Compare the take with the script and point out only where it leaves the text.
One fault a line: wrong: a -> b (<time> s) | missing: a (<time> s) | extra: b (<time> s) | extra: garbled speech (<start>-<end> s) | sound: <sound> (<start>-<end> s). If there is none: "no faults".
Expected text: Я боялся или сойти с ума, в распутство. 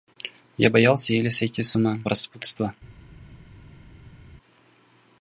no faults